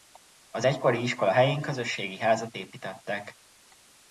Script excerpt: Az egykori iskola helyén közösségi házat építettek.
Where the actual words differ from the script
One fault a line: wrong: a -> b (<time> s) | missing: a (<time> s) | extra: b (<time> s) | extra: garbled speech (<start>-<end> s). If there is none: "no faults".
no faults